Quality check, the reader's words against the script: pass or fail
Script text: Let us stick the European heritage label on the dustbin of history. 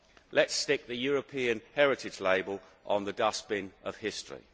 pass